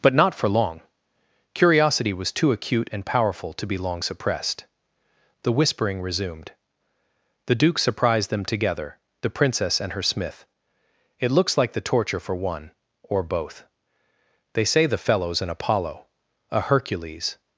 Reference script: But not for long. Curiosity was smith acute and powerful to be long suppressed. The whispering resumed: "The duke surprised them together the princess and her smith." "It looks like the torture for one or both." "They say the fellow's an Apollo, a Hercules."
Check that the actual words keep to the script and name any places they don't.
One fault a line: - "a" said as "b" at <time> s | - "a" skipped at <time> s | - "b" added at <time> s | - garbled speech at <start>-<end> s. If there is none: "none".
- "smith" said as "too" at 2.3 s